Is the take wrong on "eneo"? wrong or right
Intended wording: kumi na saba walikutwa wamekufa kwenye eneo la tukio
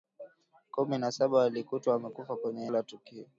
wrong